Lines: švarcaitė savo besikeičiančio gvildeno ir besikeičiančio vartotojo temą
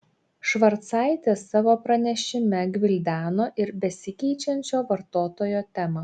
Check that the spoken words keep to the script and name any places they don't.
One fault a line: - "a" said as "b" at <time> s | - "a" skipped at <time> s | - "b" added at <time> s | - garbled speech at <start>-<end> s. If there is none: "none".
- "besikeičiančio" said as "pranešime" at 1.8 s